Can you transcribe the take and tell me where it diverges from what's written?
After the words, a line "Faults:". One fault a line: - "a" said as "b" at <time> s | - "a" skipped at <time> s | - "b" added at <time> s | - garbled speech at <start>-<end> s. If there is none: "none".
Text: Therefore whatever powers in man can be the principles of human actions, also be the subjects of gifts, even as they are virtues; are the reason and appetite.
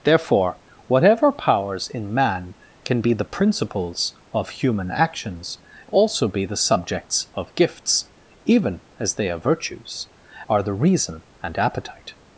Therefore whatever powers in man can be the principles of human actions, also be the subjects of gifts, even as they are virtues; are the reason and appetite.
Faults:
none